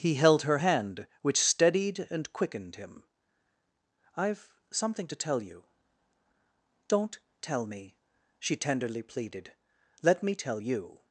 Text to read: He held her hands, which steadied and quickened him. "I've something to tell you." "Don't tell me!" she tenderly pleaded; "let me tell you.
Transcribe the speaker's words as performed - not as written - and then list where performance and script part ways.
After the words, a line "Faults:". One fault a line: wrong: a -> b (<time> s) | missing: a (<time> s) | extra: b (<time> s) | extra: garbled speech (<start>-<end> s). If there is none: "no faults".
He held her hand, which steadied and quickened him. "I've something to tell you." "Don't tell me!" she tenderly pleaded; "let me tell you.
Faults:
wrong: hands -> hand (0.5 s)